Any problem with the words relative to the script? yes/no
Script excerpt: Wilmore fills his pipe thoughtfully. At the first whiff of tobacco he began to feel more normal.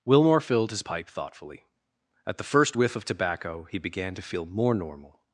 yes